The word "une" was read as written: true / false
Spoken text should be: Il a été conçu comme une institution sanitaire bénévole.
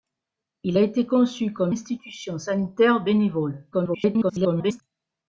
false